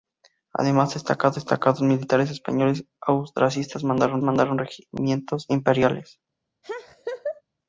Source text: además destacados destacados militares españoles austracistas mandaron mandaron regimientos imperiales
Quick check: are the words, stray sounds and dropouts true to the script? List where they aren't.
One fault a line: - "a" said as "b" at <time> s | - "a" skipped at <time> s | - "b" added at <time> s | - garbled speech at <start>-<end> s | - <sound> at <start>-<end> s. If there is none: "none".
- laugh at 6.6-7.4 s